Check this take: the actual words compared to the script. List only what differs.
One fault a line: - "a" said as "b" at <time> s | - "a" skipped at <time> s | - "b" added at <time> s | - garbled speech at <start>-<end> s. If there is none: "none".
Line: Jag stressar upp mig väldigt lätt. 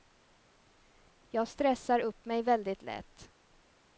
none